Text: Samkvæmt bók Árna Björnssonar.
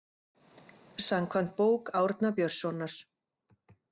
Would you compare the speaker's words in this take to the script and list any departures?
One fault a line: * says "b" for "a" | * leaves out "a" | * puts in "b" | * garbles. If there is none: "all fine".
all fine